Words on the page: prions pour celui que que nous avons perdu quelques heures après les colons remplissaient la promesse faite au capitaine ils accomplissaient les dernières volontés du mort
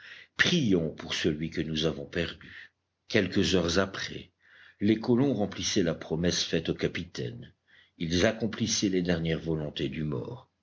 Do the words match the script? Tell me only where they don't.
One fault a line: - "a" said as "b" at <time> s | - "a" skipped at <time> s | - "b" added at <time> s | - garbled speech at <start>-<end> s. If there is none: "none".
- "que" skipped at 1.6 s